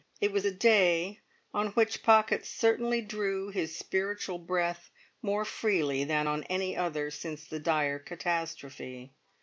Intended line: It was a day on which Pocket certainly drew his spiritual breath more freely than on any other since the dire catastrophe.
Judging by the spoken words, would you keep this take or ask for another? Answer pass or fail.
pass